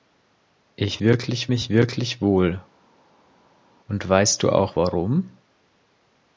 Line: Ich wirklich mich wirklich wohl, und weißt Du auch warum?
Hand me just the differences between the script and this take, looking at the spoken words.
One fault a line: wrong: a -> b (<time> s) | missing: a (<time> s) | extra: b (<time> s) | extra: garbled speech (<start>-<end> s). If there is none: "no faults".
no faults